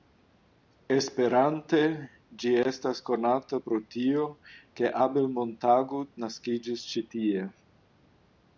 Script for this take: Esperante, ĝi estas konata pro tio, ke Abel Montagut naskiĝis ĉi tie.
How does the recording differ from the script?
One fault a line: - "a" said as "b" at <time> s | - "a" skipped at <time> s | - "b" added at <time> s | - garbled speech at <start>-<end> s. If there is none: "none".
none